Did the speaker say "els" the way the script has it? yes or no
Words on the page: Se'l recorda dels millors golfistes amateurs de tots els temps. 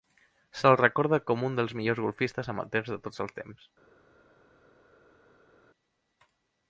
yes